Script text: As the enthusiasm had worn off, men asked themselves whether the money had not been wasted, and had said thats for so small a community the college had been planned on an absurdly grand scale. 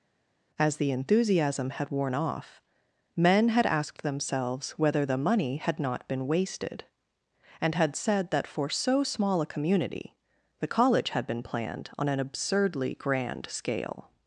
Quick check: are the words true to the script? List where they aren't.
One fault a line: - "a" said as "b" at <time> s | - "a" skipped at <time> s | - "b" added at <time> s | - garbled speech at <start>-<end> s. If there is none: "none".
- "had" added at 3.5 s
- "thats" said as "that" at 8.3 s